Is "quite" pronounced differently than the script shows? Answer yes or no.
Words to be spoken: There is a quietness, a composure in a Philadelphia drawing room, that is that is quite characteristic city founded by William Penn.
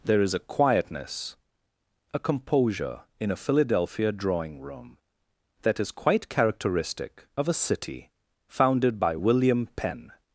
yes